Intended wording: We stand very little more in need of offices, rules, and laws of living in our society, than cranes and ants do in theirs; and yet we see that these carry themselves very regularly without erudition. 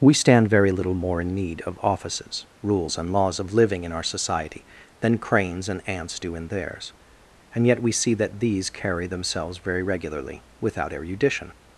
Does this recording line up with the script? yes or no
yes